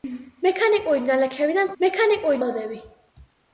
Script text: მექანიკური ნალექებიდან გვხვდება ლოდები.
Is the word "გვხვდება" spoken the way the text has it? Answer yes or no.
no